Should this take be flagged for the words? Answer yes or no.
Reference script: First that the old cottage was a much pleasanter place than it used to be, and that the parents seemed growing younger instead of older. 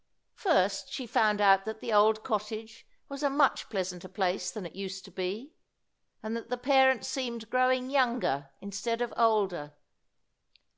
yes